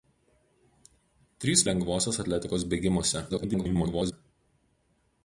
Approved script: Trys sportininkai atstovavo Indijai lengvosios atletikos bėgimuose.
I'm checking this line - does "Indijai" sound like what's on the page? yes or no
no